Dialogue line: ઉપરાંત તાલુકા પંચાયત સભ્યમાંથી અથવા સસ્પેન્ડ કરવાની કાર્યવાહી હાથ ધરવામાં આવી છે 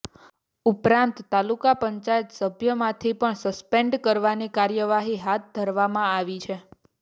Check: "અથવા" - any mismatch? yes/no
yes